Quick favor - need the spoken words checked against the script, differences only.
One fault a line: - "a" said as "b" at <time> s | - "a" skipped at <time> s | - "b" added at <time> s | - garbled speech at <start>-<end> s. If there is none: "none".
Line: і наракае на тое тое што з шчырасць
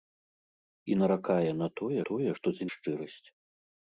none